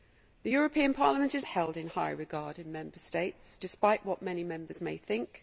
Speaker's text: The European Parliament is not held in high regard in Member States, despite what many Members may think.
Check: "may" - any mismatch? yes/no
no